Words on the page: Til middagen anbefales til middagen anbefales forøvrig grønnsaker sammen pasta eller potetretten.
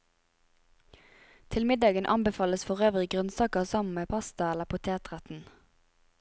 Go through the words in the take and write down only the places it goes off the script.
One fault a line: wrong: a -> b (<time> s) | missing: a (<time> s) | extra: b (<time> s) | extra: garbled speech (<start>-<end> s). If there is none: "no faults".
missing: til middagen anbefales (2.6 s)
extra: med (3.9 s)